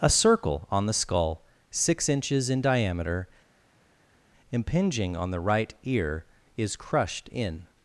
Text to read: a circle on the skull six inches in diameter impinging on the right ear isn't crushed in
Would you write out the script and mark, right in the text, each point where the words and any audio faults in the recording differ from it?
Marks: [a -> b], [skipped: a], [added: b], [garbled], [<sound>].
a circle on the skull six inches in diameter impinging on the right ear [isn't -> is] crushed in